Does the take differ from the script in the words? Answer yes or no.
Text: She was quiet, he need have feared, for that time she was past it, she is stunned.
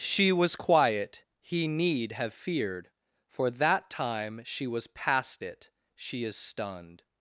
no